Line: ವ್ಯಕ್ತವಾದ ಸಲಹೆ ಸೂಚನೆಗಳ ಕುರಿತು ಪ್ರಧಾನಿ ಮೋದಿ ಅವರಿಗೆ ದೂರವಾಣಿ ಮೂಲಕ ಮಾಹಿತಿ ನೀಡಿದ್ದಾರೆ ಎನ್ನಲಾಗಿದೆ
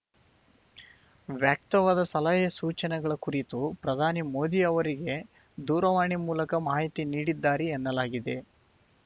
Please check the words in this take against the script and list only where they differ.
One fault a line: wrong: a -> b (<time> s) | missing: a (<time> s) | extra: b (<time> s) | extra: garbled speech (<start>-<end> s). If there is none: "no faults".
no faults